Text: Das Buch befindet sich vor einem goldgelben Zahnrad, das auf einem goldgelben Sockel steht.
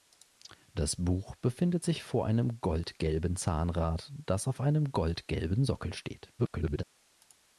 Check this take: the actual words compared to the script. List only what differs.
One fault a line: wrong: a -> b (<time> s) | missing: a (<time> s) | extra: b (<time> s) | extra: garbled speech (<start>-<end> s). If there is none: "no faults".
extra: garbled speech (6.4-6.8 s)